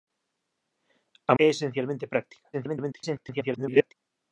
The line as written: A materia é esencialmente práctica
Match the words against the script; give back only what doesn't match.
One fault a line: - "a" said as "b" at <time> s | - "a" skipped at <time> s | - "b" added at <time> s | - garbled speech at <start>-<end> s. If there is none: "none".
- "materia" skipped at 1.3 s
- garbled speech at 2.5-3.9 s